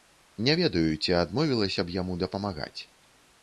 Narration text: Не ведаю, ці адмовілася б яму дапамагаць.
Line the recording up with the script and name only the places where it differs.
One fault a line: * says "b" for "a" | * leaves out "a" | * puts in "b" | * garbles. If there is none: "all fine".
all fine